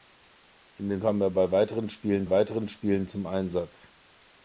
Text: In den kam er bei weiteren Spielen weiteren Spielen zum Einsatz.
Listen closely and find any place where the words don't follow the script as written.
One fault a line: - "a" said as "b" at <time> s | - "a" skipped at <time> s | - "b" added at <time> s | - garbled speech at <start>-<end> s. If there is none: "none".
none